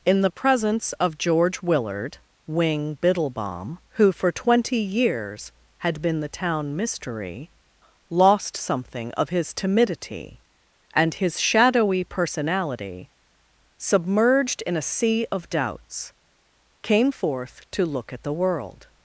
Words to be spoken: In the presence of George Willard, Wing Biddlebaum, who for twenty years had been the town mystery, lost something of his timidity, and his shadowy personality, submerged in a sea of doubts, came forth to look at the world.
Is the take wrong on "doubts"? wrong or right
right